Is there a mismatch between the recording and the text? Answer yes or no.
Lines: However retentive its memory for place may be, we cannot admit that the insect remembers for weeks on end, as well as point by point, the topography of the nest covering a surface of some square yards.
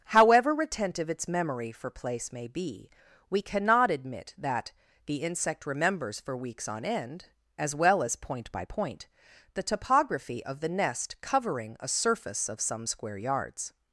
no